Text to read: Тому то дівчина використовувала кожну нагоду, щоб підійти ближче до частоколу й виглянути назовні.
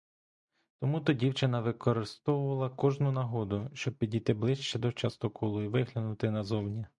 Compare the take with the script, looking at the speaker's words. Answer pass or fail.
pass